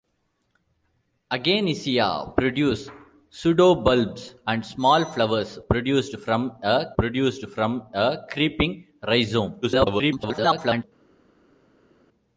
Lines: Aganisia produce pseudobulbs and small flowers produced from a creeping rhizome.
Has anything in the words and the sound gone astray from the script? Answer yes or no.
yes